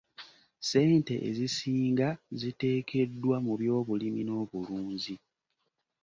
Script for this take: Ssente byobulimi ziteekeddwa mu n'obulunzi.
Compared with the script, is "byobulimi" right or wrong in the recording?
wrong